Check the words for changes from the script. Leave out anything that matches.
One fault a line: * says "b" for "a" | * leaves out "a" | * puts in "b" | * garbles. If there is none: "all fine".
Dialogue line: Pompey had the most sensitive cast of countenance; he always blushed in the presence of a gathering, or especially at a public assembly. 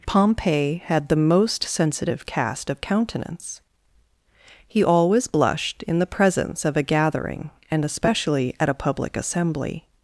* says "and" for "or"